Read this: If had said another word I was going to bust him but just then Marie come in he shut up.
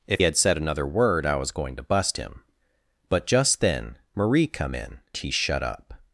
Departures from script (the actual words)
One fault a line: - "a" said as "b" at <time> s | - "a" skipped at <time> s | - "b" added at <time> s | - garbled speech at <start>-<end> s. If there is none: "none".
none